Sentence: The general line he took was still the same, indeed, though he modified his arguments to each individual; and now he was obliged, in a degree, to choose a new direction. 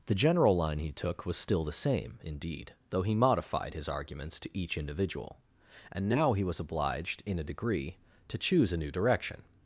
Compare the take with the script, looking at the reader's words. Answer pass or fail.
pass